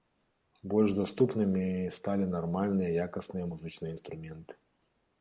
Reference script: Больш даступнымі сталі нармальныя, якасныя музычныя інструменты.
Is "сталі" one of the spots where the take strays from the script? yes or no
no